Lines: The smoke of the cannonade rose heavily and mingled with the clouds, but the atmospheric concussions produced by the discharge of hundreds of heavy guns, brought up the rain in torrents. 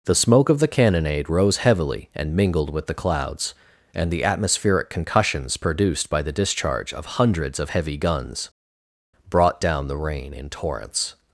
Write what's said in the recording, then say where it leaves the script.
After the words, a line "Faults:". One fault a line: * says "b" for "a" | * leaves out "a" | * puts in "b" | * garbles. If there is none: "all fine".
The smoke of the cannonade rose heavily and mingled with the clouds, and the atmospheric concussions produced by the discharge of hundreds of heavy guns, brought down the rain in torrents.
Faults:
* says "and" for "but"
* says "down" for "up"